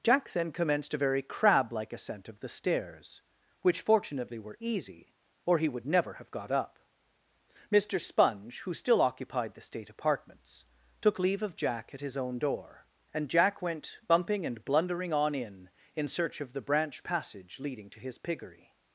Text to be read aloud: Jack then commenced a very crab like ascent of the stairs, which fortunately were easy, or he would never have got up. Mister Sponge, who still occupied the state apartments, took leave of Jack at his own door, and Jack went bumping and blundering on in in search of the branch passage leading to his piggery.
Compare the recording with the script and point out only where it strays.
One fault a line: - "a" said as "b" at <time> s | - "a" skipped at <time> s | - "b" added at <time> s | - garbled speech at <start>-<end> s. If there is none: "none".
none